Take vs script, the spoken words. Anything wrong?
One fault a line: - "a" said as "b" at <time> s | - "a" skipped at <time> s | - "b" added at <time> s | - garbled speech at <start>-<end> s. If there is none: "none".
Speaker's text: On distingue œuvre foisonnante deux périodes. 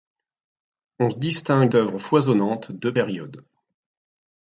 none